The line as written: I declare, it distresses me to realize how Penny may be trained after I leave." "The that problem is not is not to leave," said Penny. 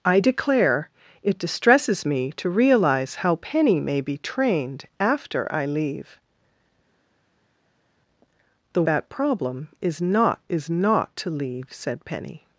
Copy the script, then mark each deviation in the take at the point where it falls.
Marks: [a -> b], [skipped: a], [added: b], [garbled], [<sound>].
I declare, it distresses me to realize how Penny may be trained after I leave." "The that problem is not is not to leave," said Penny.